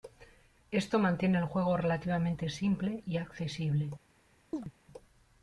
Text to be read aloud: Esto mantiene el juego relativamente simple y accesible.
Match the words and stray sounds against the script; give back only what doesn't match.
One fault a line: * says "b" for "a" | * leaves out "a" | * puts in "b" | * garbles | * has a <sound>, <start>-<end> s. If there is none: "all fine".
* has a chirp, 4.5-4.7 s